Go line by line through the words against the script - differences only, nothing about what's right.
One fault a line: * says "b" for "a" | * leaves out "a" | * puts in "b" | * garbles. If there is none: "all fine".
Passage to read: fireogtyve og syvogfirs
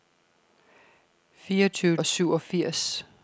all fine